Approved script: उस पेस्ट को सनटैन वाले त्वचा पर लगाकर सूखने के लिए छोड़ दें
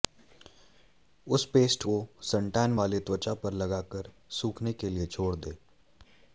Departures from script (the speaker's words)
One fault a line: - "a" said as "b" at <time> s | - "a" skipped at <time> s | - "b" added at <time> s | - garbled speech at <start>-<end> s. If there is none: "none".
none